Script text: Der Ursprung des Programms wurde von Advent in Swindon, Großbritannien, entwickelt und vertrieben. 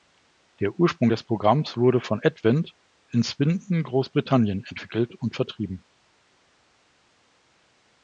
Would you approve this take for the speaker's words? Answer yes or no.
yes